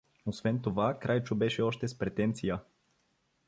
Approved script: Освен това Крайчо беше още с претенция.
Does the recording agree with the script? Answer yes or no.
yes